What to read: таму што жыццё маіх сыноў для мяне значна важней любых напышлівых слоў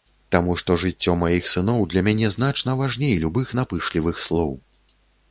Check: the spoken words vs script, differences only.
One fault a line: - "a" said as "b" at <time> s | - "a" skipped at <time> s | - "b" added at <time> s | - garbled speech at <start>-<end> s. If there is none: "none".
none